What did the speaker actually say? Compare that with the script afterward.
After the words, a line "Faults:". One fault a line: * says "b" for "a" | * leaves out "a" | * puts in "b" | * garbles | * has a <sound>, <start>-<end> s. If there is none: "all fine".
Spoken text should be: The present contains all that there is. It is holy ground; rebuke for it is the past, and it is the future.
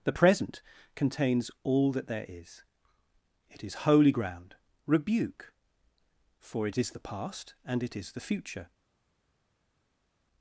The present contains all that there is. It is holy ground; rebuke for it is the past, and it is the future.
Faults:
all fine